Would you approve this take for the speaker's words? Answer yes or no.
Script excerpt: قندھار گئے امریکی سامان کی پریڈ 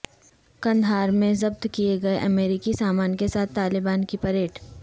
no